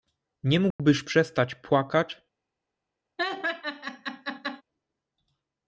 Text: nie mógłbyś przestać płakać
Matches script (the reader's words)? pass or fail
pass